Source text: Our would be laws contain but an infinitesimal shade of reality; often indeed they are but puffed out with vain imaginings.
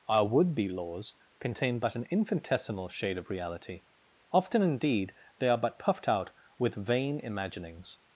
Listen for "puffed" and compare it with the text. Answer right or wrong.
right